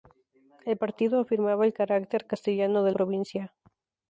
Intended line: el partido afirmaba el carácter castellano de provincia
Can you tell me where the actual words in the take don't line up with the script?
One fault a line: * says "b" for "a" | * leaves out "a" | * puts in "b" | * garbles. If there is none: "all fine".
all fine